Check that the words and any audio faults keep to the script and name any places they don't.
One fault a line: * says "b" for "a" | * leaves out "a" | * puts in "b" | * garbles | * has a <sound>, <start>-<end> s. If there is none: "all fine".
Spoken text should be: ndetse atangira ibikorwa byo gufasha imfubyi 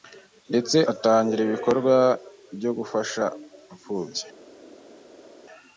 all fine